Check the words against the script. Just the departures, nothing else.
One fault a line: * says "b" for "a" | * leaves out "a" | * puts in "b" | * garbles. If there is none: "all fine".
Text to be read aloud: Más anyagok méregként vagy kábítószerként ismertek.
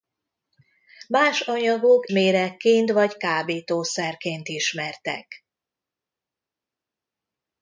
all fine